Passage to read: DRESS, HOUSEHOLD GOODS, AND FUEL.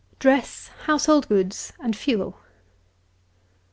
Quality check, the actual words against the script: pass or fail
pass